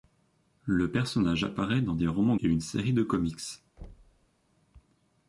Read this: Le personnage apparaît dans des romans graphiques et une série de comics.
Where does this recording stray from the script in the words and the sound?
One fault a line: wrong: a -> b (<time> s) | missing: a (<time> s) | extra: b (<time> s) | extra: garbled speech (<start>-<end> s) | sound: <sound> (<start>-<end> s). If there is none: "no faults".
missing: graphiques (2.4 s)
sound: thud (3.8-4.3 s)